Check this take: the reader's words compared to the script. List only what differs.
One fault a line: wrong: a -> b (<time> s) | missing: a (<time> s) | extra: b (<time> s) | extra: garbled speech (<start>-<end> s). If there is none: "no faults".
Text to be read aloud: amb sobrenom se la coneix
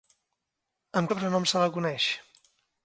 no faults